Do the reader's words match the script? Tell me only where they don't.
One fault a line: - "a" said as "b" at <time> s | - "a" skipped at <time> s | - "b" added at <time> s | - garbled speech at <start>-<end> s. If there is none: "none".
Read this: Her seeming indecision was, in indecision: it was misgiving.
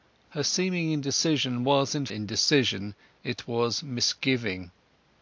none